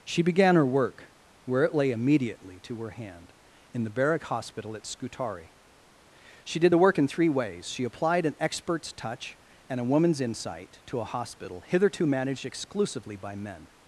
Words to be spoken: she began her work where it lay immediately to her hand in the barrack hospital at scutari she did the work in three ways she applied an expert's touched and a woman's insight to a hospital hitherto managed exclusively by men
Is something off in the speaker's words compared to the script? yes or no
yes